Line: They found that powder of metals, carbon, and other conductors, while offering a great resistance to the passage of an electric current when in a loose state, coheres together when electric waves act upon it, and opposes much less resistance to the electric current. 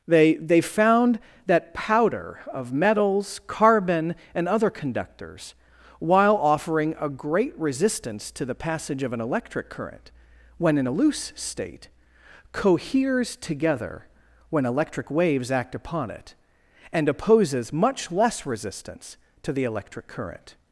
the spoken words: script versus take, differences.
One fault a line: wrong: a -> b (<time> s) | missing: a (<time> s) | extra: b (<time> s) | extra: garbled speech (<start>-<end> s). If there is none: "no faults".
extra: they (0.3 s)